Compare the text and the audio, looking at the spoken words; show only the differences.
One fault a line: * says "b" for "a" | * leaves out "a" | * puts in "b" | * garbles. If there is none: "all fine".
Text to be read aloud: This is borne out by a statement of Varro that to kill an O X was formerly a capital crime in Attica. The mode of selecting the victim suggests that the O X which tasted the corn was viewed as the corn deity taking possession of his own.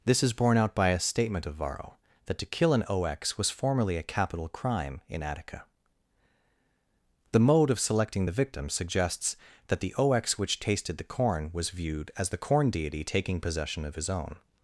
all fine